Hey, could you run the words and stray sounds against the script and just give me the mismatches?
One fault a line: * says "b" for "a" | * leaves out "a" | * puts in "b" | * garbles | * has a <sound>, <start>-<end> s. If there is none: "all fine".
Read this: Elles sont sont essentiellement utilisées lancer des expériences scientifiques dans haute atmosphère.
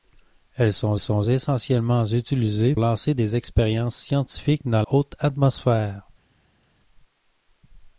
all fine